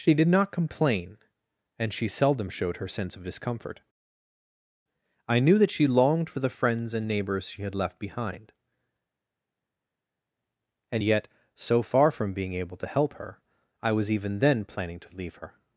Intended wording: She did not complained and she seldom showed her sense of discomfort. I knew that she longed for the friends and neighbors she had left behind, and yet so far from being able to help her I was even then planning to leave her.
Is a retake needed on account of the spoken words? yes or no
yes